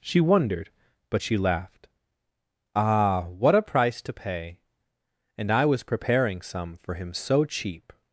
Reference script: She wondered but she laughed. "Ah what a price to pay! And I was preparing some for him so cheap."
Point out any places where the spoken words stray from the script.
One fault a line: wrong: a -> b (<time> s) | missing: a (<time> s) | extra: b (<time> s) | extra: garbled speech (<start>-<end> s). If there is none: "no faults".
no faults